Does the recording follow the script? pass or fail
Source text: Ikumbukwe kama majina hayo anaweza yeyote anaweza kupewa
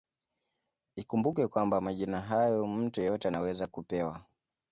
fail